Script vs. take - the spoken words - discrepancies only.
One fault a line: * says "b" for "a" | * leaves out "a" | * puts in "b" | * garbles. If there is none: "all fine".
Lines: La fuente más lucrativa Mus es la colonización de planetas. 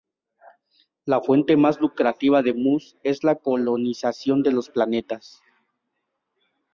* puts in "de"
* puts in "los"